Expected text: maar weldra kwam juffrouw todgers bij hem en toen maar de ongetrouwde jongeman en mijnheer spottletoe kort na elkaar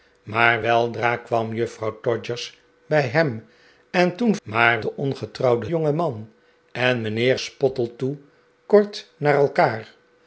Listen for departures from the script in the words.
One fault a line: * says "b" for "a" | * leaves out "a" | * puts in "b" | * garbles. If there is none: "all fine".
all fine